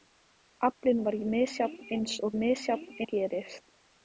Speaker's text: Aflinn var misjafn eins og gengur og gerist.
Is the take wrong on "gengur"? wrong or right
wrong